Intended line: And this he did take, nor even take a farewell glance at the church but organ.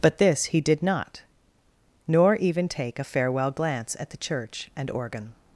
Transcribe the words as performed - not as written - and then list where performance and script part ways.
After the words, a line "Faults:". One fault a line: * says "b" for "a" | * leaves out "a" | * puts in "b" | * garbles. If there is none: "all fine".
But this he did not, nor even take a farewell glance at the church and organ.
Faults:
* says "But" for "And"
* says "not" for "take"
* says "and" for "but"